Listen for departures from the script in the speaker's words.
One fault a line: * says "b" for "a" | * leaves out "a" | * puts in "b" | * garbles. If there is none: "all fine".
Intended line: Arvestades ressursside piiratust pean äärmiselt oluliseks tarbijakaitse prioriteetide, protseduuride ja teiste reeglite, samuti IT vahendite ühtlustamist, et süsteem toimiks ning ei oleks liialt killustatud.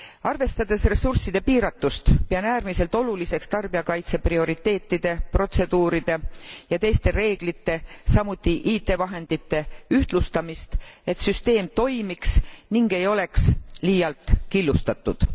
all fine